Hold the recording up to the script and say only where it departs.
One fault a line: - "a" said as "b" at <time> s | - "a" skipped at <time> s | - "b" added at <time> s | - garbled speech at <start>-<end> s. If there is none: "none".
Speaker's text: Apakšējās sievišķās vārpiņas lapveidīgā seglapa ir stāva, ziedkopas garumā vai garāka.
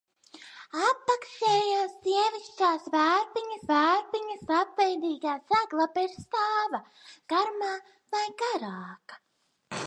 - "vārpiņas" added at 3.7 s
- "ziedkopas" skipped at 6.8 s